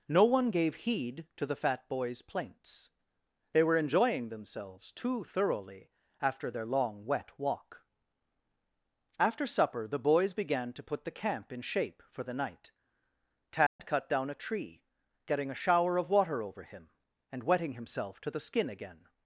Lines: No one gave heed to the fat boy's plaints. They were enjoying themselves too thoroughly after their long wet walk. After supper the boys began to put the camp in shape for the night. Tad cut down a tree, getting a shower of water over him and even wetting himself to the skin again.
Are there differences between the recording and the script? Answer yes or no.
yes